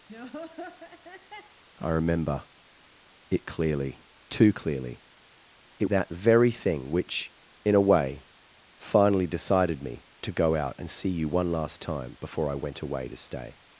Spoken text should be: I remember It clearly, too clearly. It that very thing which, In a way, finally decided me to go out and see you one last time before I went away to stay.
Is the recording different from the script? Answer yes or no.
no